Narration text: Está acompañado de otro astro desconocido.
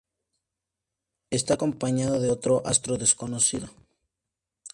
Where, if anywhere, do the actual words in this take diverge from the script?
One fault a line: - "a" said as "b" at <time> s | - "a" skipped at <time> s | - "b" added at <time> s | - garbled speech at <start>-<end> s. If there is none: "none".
none